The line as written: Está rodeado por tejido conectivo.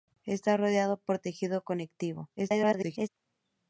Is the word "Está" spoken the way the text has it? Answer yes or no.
yes